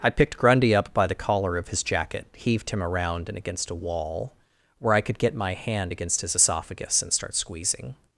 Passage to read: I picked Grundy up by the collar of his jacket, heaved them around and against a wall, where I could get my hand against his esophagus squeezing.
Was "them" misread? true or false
true